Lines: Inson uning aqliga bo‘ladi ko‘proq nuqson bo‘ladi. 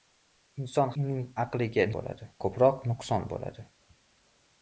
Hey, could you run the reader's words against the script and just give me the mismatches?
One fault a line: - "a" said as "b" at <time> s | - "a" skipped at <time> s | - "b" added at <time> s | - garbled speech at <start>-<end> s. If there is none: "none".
none